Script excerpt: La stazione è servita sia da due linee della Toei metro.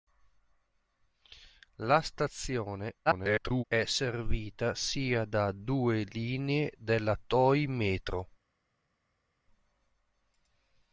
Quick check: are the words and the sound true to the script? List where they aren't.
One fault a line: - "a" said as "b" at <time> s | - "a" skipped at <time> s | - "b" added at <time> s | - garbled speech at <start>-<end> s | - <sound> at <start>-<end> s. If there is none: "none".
- garbled speech at 3.1-3.6 s